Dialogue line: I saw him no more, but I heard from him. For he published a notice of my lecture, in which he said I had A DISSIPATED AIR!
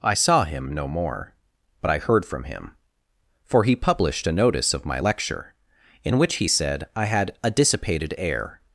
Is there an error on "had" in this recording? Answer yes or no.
no